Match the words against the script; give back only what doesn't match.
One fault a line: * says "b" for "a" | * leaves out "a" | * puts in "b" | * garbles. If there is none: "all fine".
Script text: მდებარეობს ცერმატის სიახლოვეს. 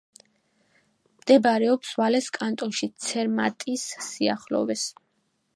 * puts in "ვალეს კანტონში"